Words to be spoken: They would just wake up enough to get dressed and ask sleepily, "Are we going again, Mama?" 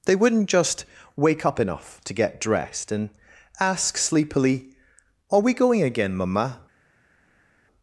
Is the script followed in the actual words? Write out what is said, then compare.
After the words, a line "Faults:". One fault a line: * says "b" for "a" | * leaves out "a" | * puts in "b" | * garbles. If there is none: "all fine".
They wouldn't just wake up enough to get dressed and ask sleepily, "Are we going again, Mama?"
Faults:
* says "wouldn't" for "would"